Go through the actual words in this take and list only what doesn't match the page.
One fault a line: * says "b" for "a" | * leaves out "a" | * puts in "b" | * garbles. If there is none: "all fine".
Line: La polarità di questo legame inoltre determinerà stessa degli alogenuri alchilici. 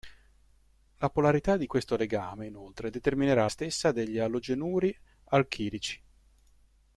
all fine